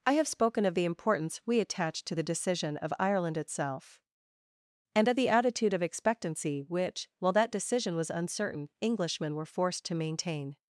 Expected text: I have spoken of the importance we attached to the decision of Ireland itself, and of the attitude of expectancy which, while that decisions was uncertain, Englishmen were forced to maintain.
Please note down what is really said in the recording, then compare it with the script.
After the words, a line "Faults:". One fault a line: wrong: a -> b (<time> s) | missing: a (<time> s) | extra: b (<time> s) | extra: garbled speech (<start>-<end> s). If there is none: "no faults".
I have spoken of the importance we attached to the decision of Ireland itself, and of the attitude of expectancy which, while that decision was uncertain, Englishmen were forced to maintain.
Faults:
wrong: decisions -> decision (7.5 s)